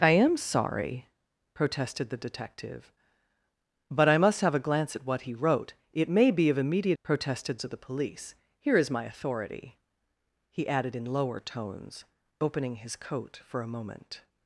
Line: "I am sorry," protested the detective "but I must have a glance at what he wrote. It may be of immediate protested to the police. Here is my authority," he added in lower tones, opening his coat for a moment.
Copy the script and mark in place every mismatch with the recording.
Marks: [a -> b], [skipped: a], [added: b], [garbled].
"I am sorry," protested the detective "but I must have a glance at what he wrote. It may be of immediate protested to the police. Here is my authority," he added in lower tones, opening his coat for a moment.